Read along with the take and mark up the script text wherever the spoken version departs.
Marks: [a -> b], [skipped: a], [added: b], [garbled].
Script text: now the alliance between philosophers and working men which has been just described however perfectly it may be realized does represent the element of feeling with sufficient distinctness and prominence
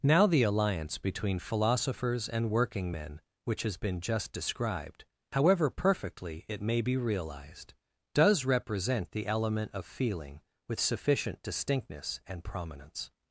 now the alliance between philosophers and working men which has been just described however perfectly it may be realized does represent the element of feeling with sufficient distinctness and prominence